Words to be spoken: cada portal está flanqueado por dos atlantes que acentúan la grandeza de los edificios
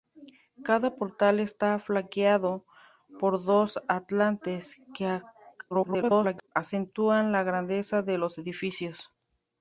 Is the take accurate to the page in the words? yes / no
no